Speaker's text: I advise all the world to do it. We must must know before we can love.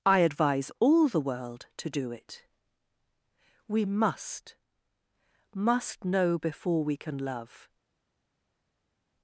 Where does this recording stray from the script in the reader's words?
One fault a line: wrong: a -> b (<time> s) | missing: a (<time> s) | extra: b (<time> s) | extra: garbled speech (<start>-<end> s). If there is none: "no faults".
no faults